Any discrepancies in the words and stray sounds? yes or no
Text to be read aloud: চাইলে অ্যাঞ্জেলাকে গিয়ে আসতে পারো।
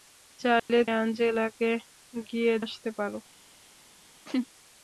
yes